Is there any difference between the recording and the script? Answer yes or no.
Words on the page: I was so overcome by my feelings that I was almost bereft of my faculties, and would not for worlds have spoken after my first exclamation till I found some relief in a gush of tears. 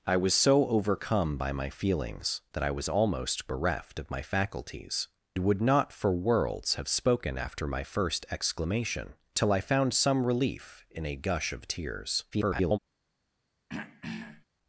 yes